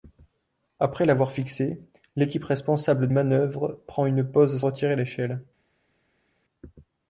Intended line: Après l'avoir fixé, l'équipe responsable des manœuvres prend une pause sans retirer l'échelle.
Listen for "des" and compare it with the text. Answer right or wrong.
wrong